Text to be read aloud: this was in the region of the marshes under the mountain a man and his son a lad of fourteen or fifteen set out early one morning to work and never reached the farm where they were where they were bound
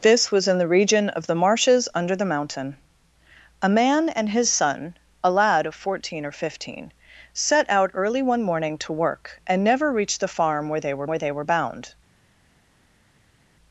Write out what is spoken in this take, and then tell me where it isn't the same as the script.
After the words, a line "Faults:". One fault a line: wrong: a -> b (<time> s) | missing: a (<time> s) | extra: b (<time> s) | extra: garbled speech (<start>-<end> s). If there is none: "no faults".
this was in the region of the marshes under the mountain a man and his son a lad of fourteen or fifteen set out early one morning to work and never reached the farm where they were where they were bound
Faults:
no faults